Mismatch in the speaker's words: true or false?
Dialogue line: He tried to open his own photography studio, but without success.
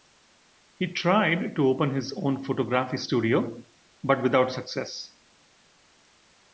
false